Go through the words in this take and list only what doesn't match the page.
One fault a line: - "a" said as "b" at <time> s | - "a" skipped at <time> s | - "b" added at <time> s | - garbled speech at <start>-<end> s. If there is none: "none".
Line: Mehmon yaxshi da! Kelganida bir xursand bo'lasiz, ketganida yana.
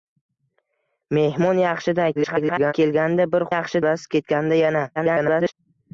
- garbled speech at 2.1-2.7 s
- "xursand" said as "yaxshi" at 3.5 s
- garbled speech at 4.9-5.5 s